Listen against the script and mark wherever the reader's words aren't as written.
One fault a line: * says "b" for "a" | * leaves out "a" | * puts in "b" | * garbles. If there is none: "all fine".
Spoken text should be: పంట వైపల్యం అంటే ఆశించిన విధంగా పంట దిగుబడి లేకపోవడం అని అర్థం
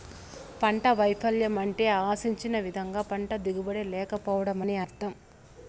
all fine